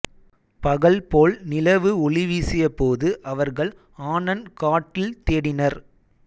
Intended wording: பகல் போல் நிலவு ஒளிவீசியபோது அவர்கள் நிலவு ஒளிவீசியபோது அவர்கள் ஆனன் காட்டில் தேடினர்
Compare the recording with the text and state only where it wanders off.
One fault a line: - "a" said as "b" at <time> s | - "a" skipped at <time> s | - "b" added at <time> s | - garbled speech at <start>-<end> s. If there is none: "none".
- "நிலவு ஒளிவீசியபோது அவர்கள்" skipped at 3.7 s